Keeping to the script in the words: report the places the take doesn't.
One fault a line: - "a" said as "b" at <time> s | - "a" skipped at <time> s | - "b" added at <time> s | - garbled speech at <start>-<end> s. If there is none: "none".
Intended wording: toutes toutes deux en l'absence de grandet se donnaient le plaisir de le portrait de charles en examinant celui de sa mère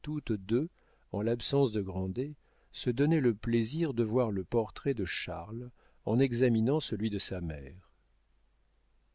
- "toutes" skipped at 0.3 s
- "voir" added at 4.0 s